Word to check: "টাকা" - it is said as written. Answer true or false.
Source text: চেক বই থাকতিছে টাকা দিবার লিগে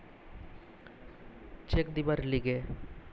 false